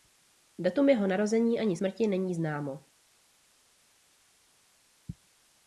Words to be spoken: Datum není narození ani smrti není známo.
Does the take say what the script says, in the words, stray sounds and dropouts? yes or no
no